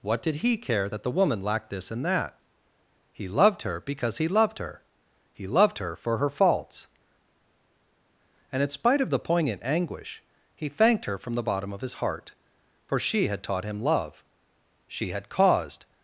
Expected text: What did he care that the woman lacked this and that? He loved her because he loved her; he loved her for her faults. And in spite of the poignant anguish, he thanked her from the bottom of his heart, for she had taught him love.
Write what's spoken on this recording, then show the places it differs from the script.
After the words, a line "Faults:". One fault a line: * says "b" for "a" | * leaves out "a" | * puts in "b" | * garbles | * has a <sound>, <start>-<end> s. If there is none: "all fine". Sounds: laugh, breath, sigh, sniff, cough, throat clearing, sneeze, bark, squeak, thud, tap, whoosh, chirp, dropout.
What did he care that the woman lacked this and that? He loved her because he loved her; he loved her for her faults. And in spite of the poignant anguish, he thanked her from the bottom of his heart, for she had taught him love. She had caused
Faults:
* puts in "She had caused"